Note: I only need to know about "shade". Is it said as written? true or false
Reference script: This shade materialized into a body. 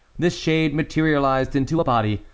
true